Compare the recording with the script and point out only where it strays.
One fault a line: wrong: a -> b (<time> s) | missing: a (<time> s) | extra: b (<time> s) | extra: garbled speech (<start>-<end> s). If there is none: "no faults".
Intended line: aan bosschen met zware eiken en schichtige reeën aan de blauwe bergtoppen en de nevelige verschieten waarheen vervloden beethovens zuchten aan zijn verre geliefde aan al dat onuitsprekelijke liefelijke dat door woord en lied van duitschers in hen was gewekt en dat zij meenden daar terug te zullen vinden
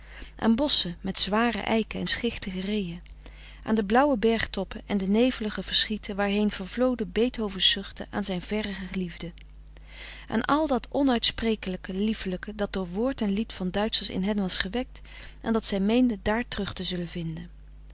no faults